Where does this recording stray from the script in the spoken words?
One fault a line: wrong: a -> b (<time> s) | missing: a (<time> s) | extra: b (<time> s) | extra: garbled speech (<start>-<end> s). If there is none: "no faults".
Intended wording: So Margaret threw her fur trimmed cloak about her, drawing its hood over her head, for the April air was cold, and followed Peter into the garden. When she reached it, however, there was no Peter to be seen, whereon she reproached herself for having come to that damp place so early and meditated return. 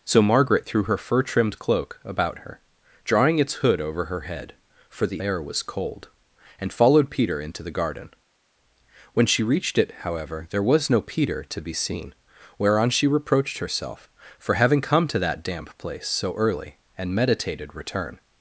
missing: April (5.2 s)